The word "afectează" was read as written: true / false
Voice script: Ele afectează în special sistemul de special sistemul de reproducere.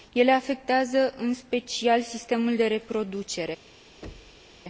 true